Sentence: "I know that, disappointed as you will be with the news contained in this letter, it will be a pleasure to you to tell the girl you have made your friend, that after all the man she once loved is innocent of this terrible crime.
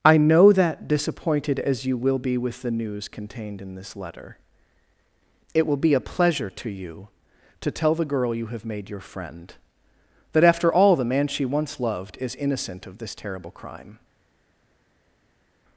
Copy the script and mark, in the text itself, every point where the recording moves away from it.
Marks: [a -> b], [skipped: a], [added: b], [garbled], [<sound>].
"I know that, disappointed as you will be with the news contained in this letter, it will be a pleasure to you to tell the girl you have made your friend, that after all the man she once loved is innocent of this terrible crime.